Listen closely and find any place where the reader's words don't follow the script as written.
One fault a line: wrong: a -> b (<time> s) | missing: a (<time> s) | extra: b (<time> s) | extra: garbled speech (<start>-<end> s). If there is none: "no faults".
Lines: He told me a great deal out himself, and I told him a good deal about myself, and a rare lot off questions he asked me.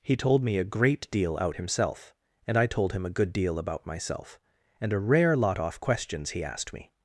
no faults